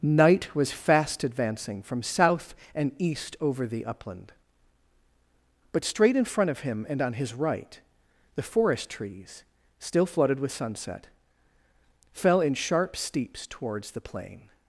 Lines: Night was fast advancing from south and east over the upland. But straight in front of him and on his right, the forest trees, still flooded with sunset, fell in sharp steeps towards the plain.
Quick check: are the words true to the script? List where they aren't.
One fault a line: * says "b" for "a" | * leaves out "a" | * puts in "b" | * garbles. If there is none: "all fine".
all fine